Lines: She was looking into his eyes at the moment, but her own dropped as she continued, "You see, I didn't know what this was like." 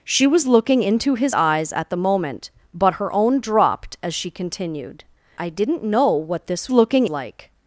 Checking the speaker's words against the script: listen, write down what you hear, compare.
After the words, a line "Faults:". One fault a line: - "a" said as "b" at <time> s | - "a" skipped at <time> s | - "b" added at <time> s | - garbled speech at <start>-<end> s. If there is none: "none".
She was looking into his eyes at the moment, but her own dropped as she continued, "I didn't know what this looking like."
Faults:
- "You see" skipped at 5.0 s
- "was" said as "looking" at 6.7 s